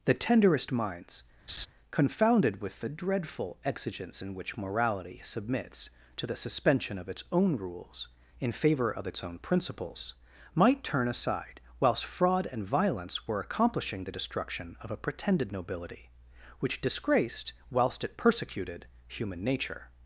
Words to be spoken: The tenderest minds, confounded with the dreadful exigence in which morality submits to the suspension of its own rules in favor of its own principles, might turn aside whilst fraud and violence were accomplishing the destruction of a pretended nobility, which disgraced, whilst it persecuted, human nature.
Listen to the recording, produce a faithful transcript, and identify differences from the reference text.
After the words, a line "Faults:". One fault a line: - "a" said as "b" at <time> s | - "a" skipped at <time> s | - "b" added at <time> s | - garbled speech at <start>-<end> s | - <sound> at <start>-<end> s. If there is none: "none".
The tenderest minds, confounded with the dreadful exigence in which morality submits to the suspension of its own rules in favor of its own principles, might turn aside whilst fraud and violence were accomplishing the destruction of a pretended nobility, which disgraced, whilst it persecuted, human nature.
Faults:
- laugh at 1.5-1.7 s